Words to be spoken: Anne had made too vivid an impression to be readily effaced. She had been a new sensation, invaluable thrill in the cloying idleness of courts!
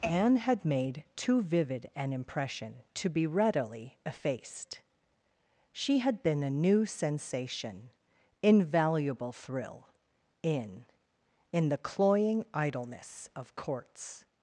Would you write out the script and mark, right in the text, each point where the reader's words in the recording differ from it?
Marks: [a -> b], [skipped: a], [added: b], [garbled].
Anne had made too vivid an impression to be readily effaced. She had been a new sensation, invaluable thrill in [added: in] the cloying idleness of courts!